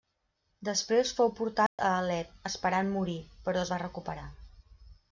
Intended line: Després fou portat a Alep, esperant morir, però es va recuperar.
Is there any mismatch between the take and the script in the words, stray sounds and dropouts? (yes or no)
yes